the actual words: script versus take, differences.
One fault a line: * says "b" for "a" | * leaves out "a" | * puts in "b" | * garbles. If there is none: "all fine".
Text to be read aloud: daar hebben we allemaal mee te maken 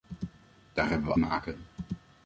* leaves out "allemaal mee te"